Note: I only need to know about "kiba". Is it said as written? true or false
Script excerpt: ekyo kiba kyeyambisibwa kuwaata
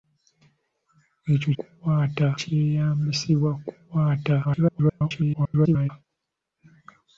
false